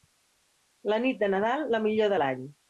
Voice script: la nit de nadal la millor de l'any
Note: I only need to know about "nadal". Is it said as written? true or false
true